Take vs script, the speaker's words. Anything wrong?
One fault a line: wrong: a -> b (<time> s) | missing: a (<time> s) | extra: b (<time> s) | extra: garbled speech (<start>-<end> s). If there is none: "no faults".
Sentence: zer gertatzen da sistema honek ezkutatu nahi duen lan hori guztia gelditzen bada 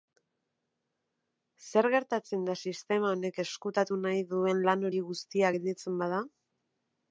no faults